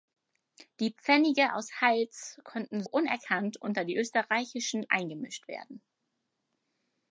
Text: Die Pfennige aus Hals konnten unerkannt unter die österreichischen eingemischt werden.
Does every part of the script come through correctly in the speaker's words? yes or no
yes